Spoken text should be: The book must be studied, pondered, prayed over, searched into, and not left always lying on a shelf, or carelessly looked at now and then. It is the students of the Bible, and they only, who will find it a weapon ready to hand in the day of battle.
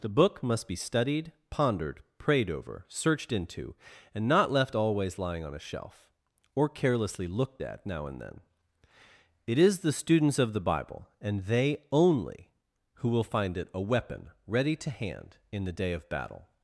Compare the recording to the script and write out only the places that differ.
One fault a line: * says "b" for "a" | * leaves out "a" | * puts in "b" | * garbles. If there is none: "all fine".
all fine